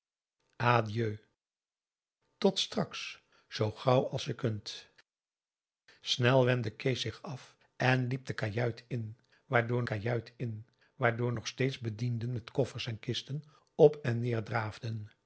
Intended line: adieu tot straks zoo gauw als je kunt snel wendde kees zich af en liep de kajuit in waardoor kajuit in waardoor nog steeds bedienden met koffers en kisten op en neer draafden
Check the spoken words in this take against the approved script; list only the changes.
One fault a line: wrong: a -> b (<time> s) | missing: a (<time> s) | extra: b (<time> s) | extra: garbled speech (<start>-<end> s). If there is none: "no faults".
no faults